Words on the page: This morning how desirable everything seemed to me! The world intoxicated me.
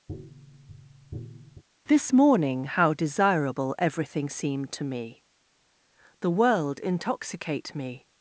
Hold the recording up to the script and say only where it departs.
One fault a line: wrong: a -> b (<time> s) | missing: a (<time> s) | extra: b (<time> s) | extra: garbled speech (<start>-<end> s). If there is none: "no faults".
wrong: intoxicated -> intoxicate (6.8 s)